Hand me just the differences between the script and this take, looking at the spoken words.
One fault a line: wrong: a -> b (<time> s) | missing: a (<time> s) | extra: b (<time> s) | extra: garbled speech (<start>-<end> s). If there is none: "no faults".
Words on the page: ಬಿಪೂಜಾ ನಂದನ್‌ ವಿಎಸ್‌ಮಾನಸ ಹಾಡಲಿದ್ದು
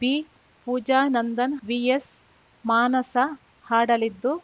no faults